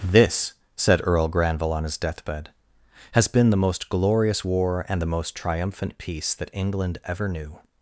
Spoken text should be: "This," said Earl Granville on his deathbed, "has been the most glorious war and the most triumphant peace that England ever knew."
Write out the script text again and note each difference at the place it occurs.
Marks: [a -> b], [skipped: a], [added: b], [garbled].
"This," said Earl Granville on his deathbed, "has been the most glorious war and the most triumphant peace that England ever knew."